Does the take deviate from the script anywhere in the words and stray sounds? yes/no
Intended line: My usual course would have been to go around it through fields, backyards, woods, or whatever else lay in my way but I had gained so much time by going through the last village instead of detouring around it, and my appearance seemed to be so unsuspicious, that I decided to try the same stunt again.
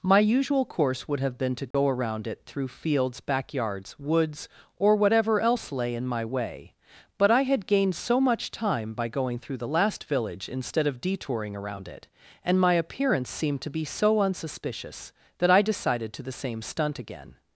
yes